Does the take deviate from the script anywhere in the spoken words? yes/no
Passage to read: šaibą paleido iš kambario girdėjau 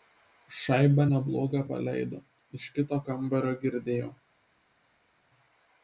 yes